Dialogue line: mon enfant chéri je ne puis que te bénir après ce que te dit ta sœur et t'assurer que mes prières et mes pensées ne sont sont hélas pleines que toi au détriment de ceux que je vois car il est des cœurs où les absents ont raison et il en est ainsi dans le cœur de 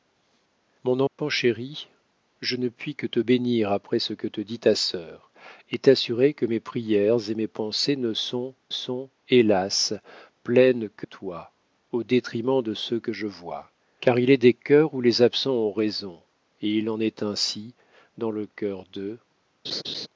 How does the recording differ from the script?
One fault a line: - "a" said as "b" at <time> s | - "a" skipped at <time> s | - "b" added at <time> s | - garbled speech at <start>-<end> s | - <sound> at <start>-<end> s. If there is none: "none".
- dropout at 1.1-1.2 s
- laugh at 19.6-20.1 s